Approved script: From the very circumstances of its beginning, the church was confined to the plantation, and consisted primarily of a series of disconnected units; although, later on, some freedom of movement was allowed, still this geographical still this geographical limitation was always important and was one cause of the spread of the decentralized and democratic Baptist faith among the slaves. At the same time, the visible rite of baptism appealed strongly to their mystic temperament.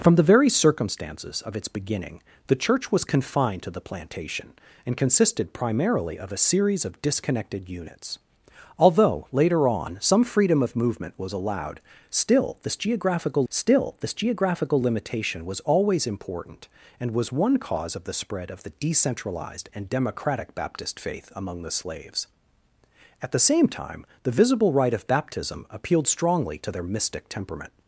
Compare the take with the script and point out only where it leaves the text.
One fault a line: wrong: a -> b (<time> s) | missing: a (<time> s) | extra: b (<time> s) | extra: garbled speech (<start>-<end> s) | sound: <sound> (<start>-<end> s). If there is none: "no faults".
no faults